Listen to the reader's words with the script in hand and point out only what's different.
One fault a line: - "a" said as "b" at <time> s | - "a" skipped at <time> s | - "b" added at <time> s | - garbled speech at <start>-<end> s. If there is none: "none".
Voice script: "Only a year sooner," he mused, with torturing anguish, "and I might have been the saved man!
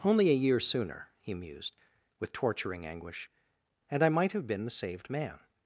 none